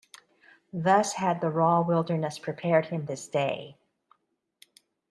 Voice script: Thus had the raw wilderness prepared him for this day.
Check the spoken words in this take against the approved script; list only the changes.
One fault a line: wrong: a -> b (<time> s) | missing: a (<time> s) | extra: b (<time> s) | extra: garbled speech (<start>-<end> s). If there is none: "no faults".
missing: for (3.0 s)